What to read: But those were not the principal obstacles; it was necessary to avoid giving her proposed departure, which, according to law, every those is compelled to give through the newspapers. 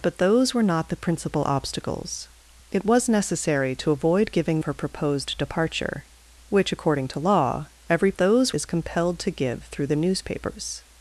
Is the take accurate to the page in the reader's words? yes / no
yes